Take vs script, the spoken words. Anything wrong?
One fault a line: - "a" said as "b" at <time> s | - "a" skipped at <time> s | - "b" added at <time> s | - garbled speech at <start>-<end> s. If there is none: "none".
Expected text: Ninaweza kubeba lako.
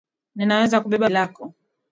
none